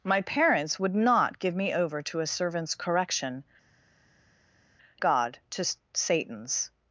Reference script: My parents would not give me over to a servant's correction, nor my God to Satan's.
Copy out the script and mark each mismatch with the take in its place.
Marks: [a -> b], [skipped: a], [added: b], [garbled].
My parents would not give me over to a servant's correction, [skipped: nor my] God to Satan's.